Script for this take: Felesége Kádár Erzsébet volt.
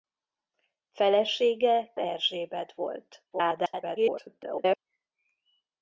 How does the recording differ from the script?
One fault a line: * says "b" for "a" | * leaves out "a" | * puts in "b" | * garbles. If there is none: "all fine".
* leaves out "Kádár"
* garbles